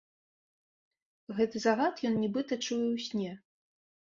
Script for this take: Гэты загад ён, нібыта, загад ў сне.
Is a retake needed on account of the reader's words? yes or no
yes